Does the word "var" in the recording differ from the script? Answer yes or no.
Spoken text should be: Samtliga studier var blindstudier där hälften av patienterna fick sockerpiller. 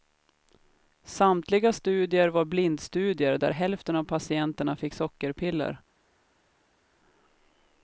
no